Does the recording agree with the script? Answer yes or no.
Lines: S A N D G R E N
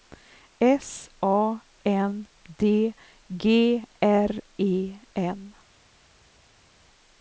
yes